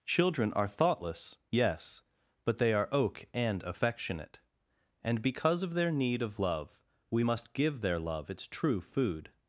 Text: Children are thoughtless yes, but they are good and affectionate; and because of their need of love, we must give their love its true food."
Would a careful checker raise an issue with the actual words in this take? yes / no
yes